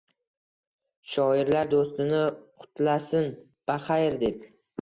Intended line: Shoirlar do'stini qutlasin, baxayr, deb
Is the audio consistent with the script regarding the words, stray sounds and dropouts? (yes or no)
yes